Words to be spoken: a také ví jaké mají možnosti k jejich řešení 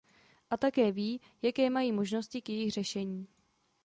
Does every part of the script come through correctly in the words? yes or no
yes